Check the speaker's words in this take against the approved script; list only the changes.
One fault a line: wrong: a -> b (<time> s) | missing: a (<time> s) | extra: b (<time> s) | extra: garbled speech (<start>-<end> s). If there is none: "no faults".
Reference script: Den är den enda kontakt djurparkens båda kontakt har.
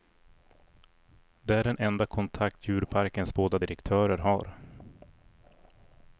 wrong: Den -> Det (1.4 s)
wrong: kontakt -> direktörer (3.6 s)